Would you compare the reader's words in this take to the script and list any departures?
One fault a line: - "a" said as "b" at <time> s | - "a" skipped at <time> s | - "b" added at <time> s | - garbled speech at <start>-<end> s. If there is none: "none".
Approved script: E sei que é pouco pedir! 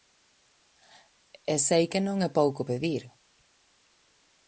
- "non" added at 2.1 s